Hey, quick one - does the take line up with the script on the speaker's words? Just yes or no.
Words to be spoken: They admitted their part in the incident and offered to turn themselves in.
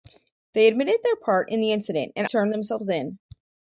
no